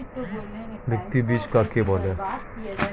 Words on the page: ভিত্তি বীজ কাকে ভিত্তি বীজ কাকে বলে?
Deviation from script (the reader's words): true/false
true